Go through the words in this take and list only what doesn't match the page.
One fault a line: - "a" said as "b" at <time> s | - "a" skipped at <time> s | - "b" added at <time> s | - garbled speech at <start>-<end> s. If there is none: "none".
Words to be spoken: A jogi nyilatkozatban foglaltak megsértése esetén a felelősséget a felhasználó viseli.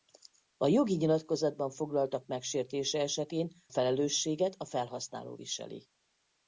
- "a" skipped at 3.5 s